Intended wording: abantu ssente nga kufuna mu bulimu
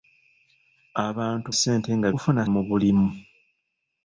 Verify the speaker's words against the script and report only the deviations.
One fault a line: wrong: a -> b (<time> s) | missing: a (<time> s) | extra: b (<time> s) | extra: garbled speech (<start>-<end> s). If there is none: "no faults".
no faults